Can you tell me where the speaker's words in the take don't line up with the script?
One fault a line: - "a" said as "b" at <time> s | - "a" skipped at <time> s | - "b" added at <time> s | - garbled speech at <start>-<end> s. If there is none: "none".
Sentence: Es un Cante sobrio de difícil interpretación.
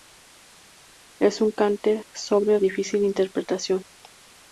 - "de" skipped at 2.6 s